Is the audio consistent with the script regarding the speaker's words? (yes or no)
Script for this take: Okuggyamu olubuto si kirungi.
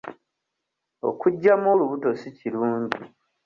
yes